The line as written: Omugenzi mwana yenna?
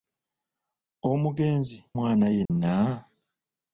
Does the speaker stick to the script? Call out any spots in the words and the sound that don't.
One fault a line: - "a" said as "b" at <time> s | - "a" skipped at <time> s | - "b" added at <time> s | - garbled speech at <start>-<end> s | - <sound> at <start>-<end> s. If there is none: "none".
- dropout at 2.5-2.5 s